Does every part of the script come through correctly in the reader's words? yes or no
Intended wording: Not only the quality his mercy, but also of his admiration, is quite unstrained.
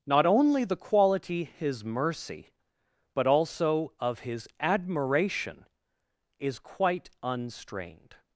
yes